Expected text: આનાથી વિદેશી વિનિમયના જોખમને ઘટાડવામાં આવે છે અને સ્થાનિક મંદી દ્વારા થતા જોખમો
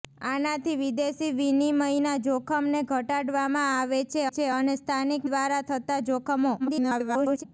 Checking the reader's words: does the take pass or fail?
fail